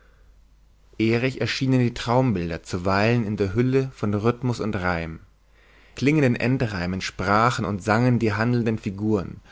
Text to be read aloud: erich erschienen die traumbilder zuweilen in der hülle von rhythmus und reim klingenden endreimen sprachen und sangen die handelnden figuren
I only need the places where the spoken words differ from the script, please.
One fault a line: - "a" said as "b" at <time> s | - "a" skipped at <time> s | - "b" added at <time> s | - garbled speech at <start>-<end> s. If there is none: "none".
none